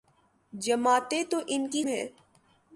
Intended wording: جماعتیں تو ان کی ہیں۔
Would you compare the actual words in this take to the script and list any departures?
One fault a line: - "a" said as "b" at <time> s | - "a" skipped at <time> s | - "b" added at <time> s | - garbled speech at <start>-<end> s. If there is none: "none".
none